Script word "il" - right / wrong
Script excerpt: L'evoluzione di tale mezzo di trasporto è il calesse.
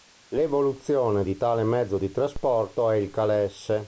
right